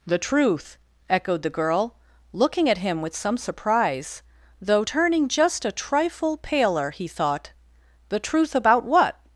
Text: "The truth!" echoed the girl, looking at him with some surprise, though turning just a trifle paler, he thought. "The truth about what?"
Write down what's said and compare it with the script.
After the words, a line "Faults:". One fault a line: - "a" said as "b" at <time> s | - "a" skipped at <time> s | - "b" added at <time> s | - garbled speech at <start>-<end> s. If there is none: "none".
"The truth!" echoed the girl, looking at him with some surprise, though turning just a trifle paler, he thought. "The truth about what?"
Faults:
none